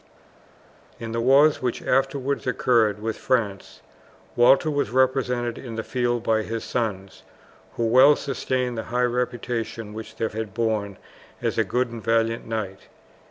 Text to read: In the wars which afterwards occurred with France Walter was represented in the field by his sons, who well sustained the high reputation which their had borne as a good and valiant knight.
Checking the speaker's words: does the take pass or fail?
pass